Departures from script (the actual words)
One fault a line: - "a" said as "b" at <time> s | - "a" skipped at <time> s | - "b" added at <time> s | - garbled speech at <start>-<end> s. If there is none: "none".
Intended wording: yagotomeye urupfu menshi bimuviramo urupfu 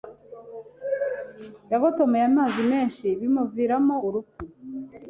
- "urupfu" said as "amazi" at 2.3 s